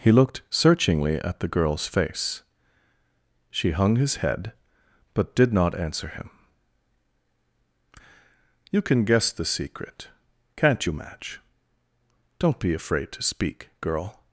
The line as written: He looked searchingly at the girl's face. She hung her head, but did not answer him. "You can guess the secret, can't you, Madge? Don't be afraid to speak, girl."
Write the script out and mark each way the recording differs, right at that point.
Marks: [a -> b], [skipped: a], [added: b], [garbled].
He looked searchingly at the girl's face. She hung [her -> his] head, but did not answer him. "You can guess the secret, can't you, Madge? Don't be afraid to speak, girl."